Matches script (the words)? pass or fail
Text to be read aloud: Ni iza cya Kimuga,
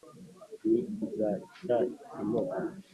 pass